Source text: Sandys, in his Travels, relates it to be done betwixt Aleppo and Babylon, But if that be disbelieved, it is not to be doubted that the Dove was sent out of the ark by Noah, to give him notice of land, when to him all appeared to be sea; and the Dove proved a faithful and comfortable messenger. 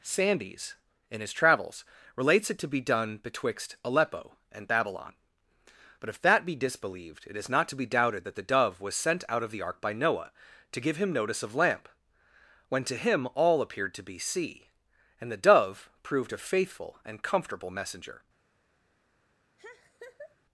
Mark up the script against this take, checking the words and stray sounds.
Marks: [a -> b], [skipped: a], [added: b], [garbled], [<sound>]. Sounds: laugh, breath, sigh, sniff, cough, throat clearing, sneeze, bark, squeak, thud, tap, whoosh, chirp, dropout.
Sandys, in his Travels, relates it to be done betwixt Aleppo and Babylon, But if that be disbelieved, it is not to be doubted that the Dove was sent out of the ark by Noah, to give him notice of [land, -> lamp] when to him all appeared to be sea; and the Dove proved a faithful and comfortable messenger. [laugh]